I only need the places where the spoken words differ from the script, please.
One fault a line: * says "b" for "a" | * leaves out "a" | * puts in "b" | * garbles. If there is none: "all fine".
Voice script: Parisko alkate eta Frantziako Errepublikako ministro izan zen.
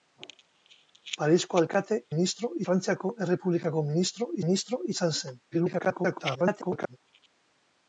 * says "ministro" for "eta"
* puts in "ministro"
* garbles